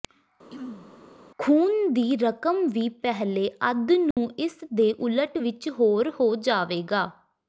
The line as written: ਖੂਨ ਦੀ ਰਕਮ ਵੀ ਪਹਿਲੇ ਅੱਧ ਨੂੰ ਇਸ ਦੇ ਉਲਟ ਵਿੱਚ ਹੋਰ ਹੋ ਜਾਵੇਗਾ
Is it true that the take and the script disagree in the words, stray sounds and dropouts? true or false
true